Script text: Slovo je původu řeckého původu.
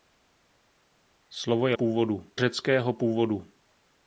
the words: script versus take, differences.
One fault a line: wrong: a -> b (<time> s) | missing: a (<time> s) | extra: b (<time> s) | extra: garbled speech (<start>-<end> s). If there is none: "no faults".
no faults